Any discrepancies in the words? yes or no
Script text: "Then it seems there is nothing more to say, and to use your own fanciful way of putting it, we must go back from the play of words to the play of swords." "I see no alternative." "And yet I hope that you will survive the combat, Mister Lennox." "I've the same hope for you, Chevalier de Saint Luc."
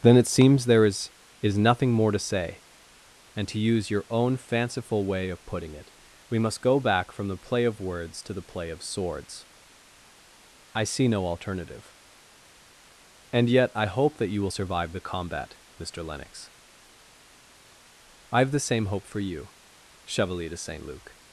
yes